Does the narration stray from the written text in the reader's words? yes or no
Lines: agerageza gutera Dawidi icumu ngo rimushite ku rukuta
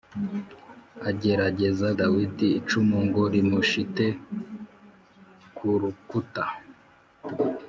yes